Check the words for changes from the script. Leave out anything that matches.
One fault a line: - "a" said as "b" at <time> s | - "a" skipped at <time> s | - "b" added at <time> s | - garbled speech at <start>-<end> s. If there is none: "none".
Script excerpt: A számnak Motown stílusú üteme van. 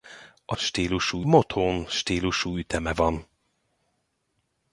- "számnak" said as "stílusú" at 0.6 s